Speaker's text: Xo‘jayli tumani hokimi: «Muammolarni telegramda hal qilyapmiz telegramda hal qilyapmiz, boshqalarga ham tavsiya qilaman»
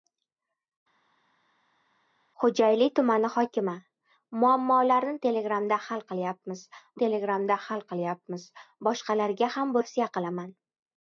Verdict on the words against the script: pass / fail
pass